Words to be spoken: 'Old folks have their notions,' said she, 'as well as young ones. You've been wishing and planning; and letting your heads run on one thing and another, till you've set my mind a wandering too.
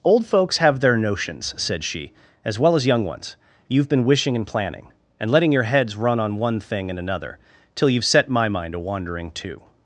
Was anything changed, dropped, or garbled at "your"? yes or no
no